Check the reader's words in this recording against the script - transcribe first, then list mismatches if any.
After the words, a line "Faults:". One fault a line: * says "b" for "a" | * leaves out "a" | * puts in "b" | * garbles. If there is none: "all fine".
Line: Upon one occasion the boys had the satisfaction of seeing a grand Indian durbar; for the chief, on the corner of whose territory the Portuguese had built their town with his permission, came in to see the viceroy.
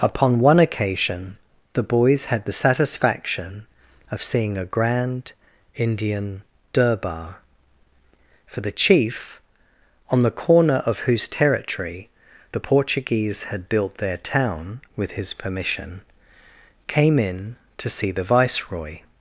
Upon one occasion the boys had the satisfaction of seeing a grand Indian durbar; for the chief, on the corner of whose territory the Portuguese had built their town with his permission, came in to see the viceroy.
Faults:
all fine